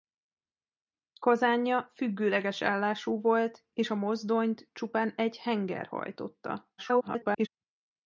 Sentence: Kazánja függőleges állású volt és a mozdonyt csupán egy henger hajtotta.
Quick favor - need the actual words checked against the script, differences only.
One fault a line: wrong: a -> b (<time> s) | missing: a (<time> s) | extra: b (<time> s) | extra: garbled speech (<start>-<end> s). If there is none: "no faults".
extra: garbled speech (6.8-7.5 s)